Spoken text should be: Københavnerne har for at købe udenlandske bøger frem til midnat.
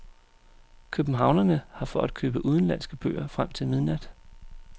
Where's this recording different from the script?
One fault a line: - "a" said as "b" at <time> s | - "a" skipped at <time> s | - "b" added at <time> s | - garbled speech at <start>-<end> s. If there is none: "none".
none